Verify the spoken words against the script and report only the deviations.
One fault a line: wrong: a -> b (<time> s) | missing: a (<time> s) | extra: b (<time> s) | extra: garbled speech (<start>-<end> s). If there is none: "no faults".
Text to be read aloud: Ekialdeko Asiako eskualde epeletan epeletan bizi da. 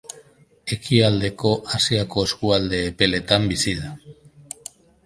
missing: epeletan (3.5 s)